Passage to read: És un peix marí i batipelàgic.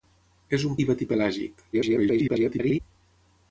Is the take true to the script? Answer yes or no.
no